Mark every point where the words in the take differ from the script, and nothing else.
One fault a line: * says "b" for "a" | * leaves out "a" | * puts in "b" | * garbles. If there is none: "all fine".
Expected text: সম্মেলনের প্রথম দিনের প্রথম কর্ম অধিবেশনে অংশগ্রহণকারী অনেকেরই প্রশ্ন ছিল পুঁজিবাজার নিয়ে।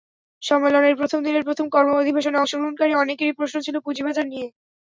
all fine